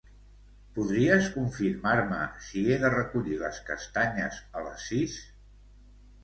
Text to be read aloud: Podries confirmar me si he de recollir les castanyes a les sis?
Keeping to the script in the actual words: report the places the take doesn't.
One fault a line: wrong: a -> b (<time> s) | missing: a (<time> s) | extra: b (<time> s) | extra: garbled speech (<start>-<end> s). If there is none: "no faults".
no faults